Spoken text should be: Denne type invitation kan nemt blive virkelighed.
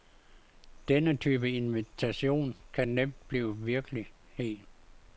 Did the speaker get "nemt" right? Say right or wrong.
right